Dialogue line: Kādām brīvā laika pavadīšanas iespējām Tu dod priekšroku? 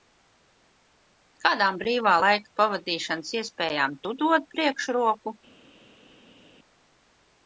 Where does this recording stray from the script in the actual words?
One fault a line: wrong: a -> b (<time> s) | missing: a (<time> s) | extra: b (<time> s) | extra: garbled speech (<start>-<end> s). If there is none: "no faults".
no faults